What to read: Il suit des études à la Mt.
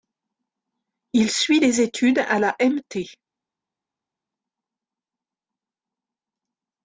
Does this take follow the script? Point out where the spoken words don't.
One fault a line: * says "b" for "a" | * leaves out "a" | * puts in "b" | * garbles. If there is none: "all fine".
all fine